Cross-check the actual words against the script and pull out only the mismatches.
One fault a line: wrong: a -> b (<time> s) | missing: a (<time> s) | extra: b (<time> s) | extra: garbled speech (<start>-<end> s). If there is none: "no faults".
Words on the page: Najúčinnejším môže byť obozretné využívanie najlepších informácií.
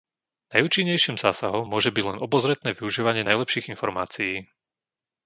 extra: zásahom (1.2 s)
extra: len (2.1 s)